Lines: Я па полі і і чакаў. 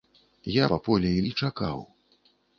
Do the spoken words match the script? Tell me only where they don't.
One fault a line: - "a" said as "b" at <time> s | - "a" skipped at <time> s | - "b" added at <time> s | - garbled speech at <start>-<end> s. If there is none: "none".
none